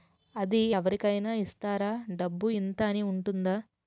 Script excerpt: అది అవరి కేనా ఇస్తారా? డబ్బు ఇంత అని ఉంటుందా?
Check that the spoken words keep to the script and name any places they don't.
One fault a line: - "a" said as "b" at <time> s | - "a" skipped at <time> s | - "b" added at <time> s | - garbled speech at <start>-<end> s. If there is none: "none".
none